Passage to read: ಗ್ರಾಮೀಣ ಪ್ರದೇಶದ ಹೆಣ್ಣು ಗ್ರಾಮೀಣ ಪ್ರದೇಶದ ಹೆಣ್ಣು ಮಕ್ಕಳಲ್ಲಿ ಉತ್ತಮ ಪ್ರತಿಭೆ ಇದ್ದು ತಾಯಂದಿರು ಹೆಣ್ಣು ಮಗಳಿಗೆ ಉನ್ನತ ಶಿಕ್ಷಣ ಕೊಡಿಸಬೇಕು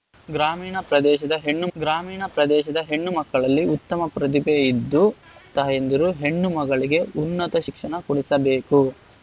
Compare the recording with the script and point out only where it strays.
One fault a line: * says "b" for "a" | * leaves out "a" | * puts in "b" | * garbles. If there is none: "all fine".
all fine